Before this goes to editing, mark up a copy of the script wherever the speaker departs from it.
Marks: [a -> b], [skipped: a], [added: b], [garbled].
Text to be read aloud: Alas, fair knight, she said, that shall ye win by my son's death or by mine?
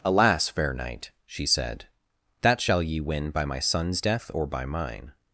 Alas, fair knight, she said, that shall ye win by my son's death or by mine?